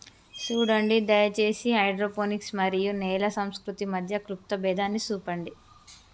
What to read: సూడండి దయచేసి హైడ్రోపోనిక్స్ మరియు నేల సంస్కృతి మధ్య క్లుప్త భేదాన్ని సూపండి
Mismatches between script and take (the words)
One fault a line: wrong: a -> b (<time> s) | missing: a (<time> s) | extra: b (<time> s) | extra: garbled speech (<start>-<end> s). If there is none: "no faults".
no faults